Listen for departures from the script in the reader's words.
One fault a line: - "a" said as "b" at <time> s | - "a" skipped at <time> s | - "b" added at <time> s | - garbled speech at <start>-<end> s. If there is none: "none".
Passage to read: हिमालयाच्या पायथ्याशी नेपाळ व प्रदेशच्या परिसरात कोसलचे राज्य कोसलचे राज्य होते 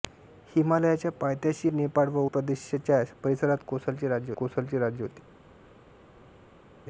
none